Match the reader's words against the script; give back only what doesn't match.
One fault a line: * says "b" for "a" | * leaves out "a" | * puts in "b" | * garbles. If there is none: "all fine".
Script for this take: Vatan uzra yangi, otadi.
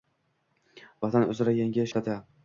all fine